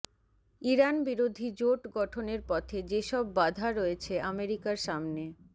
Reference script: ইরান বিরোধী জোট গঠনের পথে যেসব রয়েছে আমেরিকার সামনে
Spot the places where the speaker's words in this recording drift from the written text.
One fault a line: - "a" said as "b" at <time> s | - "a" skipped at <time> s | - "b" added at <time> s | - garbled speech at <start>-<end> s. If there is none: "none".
- "বাধা" added at 3.4 s